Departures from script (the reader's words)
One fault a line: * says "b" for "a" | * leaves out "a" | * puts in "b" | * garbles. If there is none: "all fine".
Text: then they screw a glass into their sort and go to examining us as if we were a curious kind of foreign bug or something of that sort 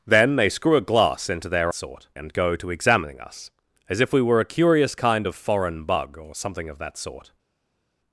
all fine